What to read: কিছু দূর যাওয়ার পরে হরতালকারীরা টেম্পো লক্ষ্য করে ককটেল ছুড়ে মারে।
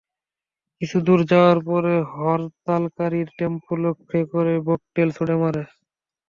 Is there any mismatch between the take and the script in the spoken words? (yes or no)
no